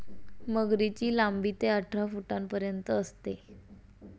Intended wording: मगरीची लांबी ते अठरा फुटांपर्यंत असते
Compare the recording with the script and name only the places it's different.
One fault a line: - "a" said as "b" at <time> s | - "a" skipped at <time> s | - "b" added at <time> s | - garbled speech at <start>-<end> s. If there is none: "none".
none